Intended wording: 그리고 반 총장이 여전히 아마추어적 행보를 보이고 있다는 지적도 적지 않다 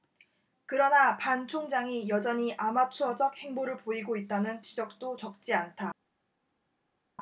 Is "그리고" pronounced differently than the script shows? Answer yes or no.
yes